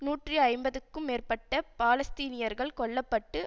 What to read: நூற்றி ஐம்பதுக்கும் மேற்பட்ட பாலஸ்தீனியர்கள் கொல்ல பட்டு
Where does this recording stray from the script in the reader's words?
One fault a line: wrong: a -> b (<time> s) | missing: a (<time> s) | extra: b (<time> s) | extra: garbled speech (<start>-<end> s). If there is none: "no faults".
no faults